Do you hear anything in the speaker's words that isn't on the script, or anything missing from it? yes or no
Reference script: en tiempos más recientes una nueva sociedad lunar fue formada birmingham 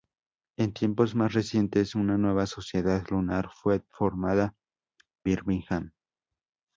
no